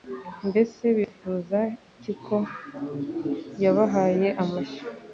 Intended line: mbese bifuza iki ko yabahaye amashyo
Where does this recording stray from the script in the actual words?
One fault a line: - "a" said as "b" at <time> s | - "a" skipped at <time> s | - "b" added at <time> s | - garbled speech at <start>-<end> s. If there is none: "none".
none